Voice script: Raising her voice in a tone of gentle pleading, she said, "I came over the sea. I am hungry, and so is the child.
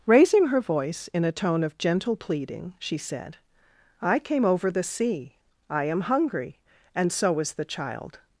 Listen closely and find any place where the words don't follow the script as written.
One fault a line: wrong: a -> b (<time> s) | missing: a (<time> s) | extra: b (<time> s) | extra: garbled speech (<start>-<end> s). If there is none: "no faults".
no faults